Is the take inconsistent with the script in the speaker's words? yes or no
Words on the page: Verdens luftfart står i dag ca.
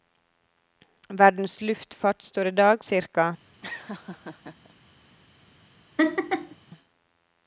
no